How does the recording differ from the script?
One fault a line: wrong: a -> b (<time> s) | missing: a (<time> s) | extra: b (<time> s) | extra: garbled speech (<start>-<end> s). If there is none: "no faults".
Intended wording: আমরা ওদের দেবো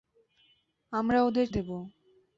no faults